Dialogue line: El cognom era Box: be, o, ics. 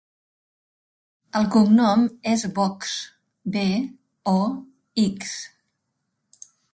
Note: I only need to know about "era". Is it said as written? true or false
false